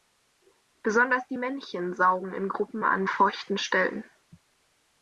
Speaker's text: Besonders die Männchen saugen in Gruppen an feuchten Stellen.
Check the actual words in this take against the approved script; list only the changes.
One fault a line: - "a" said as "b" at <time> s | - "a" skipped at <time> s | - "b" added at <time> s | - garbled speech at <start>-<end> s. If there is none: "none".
none